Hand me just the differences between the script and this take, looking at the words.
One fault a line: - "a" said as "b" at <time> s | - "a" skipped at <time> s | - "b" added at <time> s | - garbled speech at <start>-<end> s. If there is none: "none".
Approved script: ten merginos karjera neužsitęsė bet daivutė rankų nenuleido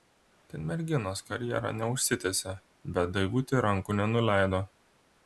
none